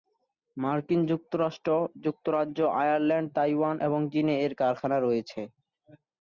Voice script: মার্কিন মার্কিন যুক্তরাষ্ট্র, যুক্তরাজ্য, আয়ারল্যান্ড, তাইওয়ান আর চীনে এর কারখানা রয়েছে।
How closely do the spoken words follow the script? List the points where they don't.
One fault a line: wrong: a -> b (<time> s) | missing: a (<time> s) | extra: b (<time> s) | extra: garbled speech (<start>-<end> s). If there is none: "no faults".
missing: মার্কিন (1.0 s)
wrong: আর -> এবং (3.9 s)